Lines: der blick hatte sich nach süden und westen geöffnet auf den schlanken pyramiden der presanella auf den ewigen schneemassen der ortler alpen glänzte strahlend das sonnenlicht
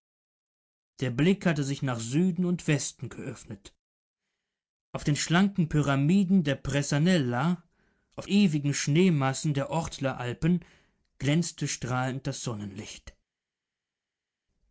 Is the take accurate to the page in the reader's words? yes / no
no